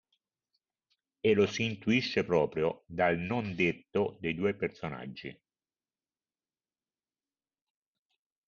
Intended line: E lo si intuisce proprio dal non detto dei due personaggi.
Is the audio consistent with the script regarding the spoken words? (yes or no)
yes